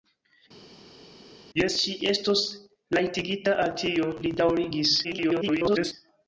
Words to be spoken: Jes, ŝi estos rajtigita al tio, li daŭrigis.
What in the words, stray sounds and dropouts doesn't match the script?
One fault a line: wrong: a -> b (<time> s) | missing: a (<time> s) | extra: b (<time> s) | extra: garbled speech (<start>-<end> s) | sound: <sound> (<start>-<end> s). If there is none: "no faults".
extra: garbled speech (5.0-5.9 s)